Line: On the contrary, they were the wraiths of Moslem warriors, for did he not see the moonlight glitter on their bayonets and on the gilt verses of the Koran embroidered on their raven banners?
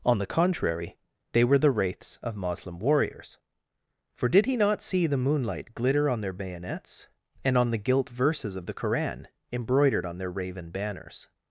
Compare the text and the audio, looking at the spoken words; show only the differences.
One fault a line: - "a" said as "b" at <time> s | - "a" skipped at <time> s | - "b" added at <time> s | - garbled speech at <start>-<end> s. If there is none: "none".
none